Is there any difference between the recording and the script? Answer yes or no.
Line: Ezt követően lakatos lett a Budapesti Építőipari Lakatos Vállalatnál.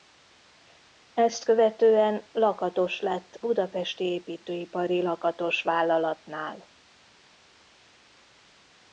yes